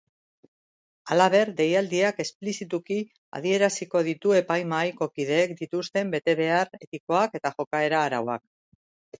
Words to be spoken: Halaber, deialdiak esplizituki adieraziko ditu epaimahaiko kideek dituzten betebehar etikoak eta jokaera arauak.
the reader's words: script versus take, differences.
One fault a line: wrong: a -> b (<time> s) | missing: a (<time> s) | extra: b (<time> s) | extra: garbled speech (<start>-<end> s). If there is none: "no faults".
no faults